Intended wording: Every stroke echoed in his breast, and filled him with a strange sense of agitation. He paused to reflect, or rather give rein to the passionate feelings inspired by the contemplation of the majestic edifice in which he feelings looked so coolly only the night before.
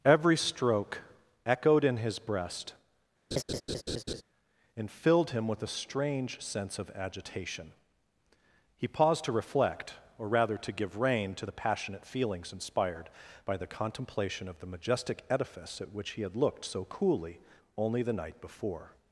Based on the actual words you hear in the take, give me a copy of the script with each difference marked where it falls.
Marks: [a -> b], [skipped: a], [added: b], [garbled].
Every stroke echoed in his breast, and filled him with a strange sense of agitation. He paused to reflect, or rather [added: to] give rein to the passionate feelings inspired by the contemplation of the majestic edifice [in -> at] which he [feelings -> had] looked so coolly only the night before.